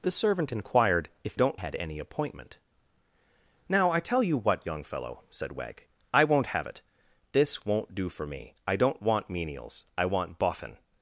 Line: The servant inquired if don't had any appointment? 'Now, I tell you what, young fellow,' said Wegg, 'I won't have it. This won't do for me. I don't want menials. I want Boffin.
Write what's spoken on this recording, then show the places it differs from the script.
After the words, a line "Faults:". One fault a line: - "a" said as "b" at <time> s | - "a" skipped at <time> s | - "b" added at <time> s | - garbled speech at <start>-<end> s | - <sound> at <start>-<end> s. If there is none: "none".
The servant inquired if don't had any appointment? 'Now, I tell you what, young fellow,' said Wegg, 'I won't have it. This won't do for me. I don't want menials. I want Boffin.
Faults:
none